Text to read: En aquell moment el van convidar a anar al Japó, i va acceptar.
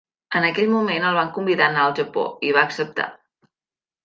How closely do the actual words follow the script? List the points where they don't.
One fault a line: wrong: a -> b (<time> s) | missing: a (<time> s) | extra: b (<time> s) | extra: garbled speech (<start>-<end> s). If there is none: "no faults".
no faults